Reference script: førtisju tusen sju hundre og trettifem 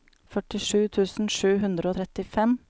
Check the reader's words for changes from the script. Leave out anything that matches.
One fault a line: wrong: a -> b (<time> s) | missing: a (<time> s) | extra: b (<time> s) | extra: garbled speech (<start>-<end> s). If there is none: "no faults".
no faults